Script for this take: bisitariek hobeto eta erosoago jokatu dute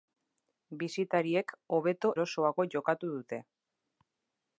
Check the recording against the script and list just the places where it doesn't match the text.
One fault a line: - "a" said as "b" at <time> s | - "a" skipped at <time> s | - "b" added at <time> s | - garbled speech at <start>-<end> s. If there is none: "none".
- "eta" skipped at 2.1 s